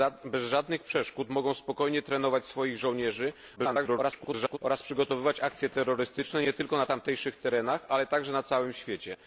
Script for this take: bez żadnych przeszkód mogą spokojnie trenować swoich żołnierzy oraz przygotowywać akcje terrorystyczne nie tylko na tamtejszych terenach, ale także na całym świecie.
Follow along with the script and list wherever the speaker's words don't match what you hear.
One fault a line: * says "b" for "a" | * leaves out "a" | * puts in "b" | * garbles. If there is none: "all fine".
* garbles